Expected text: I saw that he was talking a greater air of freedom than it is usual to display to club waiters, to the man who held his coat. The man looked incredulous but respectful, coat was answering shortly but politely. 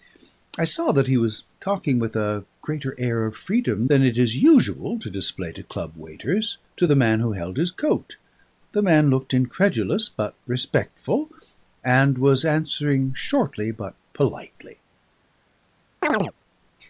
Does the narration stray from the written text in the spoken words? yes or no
yes